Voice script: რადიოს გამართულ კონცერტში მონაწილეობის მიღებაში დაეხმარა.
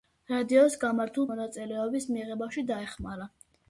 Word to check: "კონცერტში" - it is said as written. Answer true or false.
false